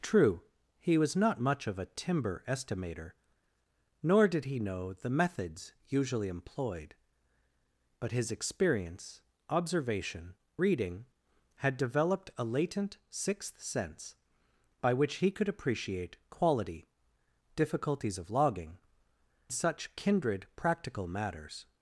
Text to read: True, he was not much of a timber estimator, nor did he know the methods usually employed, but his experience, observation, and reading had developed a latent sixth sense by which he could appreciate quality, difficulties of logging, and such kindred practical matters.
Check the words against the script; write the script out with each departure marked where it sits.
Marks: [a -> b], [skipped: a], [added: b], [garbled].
True, he was not much of a timber estimator, nor did he know the methods usually employed, but his experience, observation, [skipped: and] reading had developed a latent sixth sense by which he could appreciate quality, difficulties of logging, [skipped: and] such kindred practical matters.